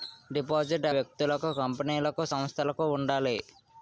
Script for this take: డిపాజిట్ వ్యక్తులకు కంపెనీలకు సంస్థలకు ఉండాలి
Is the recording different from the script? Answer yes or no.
no